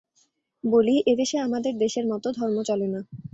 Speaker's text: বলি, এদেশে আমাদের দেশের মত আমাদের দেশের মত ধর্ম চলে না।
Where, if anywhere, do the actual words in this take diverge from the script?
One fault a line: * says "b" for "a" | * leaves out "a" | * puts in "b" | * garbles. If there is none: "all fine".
* leaves out "আমাদের দেশের মত"